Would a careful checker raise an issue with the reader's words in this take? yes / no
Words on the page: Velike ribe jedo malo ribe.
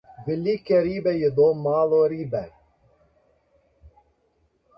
no